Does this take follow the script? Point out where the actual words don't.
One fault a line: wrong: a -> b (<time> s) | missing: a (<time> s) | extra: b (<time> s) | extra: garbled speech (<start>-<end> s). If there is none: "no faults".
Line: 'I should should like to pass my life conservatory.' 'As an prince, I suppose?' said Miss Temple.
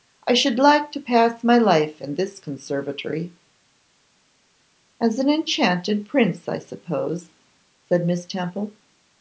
missing: should (0.6 s)
extra: in this (2.0 s)
extra: enchanted (5.3 s)